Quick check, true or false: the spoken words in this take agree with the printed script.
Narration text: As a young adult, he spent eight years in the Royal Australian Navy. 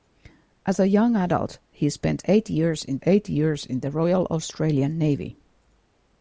false